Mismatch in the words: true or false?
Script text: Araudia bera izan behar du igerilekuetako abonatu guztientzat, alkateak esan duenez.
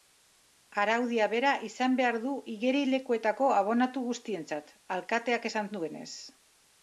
false